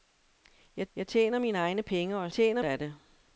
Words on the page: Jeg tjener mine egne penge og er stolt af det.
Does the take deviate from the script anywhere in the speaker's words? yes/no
yes